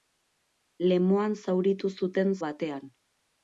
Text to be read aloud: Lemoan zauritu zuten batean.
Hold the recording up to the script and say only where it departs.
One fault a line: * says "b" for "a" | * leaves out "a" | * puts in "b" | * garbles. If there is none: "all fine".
all fine